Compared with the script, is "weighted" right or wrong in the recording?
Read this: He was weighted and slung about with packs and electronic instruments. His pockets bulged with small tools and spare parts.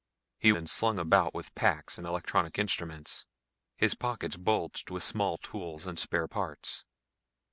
wrong